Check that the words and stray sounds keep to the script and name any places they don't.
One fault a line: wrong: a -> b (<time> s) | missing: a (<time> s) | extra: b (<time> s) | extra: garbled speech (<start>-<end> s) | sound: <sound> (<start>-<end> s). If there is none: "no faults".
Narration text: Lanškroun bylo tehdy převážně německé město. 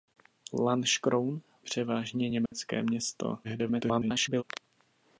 missing: bylo tehdy (1.4 s)
sound: dropout (2.5-2.5 s)
extra: garbled speech (3.4-4.4 s)